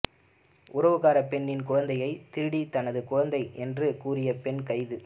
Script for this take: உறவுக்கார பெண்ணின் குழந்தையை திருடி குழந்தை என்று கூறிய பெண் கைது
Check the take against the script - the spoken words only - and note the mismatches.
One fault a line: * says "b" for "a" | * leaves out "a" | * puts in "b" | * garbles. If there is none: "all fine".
* puts in "தனது"